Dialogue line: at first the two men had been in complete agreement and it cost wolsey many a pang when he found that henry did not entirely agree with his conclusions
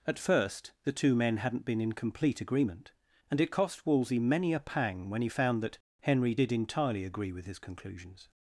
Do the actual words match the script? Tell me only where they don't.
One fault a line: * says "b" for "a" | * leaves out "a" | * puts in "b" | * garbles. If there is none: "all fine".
* says "hadn't" for "had"
* leaves out "not"